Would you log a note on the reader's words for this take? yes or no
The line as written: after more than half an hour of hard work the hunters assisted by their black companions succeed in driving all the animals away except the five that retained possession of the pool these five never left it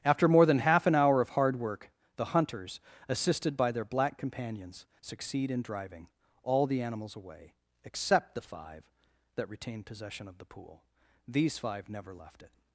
no